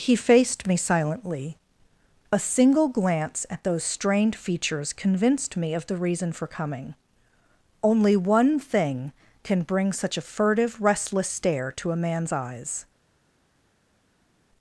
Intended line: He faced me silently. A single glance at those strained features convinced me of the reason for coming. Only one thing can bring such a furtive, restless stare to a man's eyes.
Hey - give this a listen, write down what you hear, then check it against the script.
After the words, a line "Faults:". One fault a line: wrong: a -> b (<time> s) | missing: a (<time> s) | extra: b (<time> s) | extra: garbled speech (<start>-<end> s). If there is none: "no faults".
He faced me silently. A single glance at those strained features convinced me of the reason for coming. Only one thing can bring such a furtive, restless stare to a man's eyes.
Faults:
no faults